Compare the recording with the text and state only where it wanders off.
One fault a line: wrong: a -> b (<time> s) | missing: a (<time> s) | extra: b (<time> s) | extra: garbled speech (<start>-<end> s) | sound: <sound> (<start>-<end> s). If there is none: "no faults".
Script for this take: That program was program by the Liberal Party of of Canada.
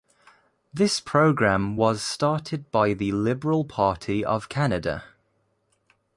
wrong: That -> This (0.7 s)
wrong: program -> started (2.0 s)
missing: of (4.5 s)